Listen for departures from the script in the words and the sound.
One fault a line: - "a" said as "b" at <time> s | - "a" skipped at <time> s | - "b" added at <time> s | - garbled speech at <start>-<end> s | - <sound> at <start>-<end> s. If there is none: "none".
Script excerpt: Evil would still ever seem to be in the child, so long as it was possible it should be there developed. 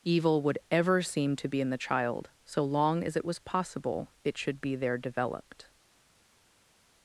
- "still" skipped at 0.6 s